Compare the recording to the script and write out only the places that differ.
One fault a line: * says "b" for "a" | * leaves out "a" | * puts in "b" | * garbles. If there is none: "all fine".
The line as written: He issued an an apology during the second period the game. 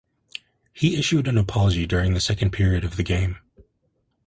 * leaves out "an"
* puts in "of"